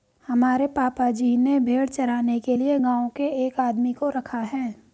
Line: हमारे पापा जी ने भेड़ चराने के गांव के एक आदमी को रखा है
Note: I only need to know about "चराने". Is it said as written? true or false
true